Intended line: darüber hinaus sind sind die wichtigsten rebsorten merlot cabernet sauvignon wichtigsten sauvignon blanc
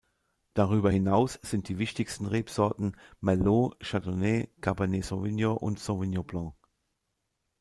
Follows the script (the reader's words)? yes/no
no